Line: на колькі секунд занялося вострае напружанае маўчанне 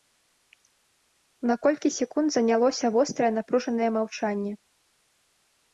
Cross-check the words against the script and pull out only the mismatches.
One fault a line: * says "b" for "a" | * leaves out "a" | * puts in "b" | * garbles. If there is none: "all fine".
all fine